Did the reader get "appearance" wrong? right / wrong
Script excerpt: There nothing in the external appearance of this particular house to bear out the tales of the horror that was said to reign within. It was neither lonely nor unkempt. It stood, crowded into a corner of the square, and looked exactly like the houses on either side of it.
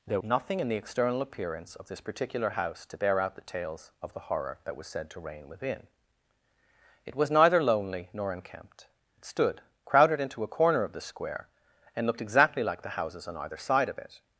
right